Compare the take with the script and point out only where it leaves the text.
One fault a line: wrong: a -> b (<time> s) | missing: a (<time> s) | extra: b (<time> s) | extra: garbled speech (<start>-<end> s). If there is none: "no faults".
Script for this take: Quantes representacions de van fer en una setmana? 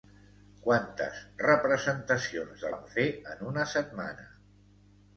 no faults